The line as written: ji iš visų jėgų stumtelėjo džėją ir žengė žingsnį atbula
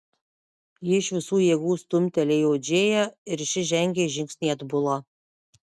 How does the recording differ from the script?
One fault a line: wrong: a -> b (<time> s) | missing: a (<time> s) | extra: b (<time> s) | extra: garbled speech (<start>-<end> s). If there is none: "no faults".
extra: ši (3.5 s)